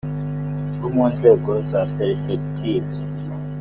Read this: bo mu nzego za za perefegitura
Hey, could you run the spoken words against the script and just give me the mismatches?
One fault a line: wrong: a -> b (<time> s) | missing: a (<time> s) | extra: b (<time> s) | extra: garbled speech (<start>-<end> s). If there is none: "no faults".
missing: za (1.8 s)